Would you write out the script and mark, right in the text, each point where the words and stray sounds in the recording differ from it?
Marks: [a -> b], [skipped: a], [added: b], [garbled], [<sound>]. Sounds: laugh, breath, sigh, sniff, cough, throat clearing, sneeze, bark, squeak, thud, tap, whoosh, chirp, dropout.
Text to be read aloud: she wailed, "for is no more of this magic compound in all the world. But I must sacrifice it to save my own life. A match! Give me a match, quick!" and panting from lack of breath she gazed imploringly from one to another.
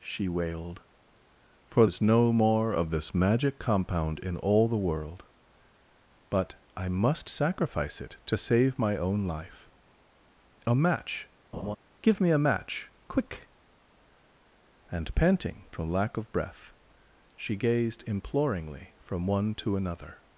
she wailed, "for is no more of this magic compound in all the world. But I must sacrifice it to save my own life. A match! [laugh] Give me a match, quick!" and panting from lack of breath she gazed imploringly from one to another.